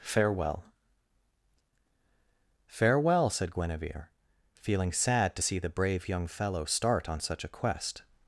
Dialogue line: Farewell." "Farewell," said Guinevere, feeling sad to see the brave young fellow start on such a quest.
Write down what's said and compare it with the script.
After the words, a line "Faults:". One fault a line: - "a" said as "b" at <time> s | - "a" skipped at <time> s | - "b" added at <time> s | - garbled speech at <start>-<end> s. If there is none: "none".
Farewell." "Farewell," said Guinevere, feeling sad to see the brave young fellow start on such a quest.
Faults:
none